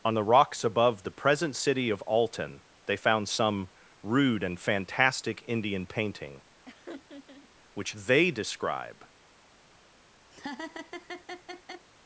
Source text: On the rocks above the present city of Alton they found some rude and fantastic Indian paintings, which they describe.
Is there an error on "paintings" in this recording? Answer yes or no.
yes